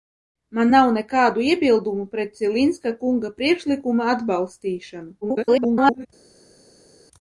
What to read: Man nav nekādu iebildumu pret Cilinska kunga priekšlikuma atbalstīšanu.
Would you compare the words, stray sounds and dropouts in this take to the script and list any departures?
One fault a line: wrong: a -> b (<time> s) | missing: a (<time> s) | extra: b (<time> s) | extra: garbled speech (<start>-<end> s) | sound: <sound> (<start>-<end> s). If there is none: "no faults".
extra: garbled speech (5.2-6.1 s)